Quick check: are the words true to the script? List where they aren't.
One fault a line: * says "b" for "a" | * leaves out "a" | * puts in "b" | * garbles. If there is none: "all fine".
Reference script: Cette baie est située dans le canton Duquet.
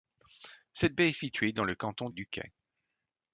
all fine